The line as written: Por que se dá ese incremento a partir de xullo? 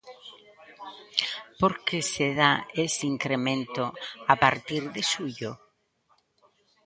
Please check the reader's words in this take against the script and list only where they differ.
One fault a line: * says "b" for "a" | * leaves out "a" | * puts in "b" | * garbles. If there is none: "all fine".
all fine